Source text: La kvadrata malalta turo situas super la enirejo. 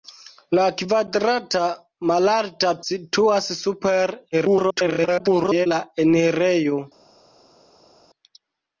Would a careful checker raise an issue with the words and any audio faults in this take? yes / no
yes